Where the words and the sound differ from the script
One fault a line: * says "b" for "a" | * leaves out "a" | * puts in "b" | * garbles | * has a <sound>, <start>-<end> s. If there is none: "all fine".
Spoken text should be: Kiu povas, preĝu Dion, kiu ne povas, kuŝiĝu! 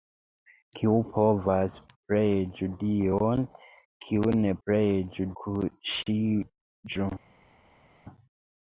* says "preĝu" for "povas"